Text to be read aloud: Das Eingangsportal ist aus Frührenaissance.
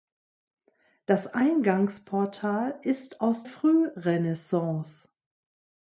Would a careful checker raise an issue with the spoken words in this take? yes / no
no